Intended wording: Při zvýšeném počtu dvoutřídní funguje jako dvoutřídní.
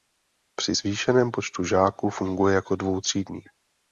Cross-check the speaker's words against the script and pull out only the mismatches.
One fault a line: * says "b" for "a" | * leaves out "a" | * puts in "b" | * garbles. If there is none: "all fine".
* says "žáků" for "dvoutřídní"